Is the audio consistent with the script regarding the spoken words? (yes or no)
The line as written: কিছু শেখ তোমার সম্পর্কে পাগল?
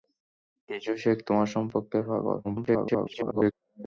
no